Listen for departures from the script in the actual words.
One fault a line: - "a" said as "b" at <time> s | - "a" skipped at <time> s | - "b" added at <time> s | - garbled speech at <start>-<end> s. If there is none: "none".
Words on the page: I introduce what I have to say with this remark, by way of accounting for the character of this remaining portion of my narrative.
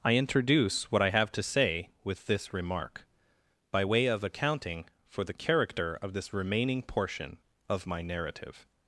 none